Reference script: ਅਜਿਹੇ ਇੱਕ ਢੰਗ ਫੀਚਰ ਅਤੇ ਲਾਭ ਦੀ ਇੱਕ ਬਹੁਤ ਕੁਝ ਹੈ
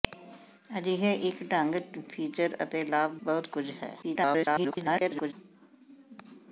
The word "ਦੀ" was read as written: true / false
false